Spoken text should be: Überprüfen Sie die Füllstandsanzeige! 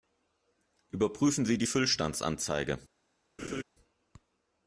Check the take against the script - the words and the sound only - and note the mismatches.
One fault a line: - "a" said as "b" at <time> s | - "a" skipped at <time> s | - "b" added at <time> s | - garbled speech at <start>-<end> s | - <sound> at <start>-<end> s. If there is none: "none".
- laugh at 3.4-3.6 s